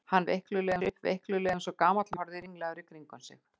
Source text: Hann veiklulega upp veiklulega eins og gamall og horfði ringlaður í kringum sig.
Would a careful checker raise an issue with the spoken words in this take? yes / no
no